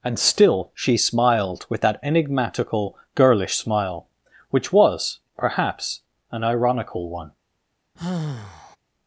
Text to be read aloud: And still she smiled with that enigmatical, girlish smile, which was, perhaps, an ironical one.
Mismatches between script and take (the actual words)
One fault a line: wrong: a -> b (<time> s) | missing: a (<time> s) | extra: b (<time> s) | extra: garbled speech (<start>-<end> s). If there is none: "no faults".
no faults